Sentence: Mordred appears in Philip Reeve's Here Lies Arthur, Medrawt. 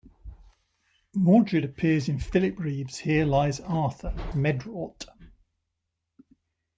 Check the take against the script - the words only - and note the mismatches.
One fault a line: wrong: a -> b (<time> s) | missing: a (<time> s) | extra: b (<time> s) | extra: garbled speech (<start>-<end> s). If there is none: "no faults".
no faults